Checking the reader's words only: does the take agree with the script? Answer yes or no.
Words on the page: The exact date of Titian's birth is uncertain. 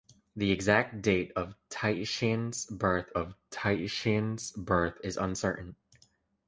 no